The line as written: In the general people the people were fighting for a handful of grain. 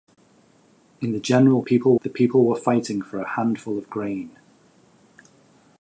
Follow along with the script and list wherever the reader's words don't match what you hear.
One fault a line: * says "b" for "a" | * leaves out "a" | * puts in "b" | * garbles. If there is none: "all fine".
all fine